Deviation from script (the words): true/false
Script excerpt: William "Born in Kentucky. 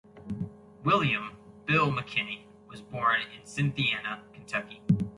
true